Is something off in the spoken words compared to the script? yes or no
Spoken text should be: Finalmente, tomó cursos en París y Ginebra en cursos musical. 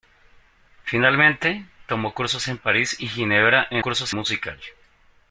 no